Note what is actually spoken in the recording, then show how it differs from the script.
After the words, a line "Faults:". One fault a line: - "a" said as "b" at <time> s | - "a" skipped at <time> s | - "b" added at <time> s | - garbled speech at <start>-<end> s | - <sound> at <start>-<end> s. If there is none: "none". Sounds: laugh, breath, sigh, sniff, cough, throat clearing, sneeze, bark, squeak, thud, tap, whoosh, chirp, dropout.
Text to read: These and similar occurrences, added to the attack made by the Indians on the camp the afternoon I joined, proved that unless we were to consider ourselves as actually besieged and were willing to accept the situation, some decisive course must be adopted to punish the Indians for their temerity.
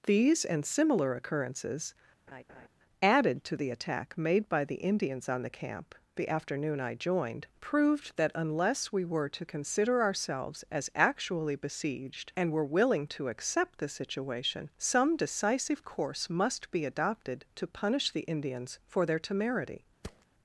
These and similar occurrences, added to the attack made by the Indians on the camp the afternoon I joined, proved that unless we were to consider ourselves as actually besieged and were willing to accept the situation, some decisive course must be adopted to punish the Indians for their temerity.
Faults:
- laugh at 2.3-2.7 s
- thud at 20.0-20.3 s